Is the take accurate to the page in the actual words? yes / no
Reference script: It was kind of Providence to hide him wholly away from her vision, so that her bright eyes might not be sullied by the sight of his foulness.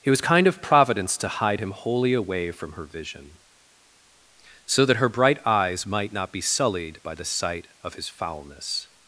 yes